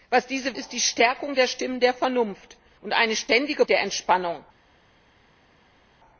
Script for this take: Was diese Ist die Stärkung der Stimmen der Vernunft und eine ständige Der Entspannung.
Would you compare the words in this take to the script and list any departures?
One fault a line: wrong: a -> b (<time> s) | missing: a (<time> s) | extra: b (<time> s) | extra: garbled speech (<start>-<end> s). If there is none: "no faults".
no faults